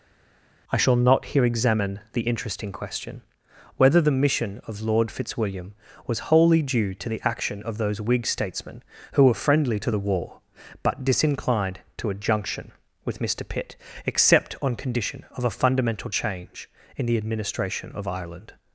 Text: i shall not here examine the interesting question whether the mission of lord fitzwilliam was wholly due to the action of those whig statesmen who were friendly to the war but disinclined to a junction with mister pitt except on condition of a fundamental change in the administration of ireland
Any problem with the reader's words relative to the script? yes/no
no